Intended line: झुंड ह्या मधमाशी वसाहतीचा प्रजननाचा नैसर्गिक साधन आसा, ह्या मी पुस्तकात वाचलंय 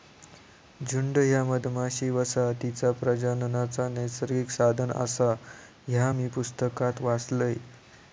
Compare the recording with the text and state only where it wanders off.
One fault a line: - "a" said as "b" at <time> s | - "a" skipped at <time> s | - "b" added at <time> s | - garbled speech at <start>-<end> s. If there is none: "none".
none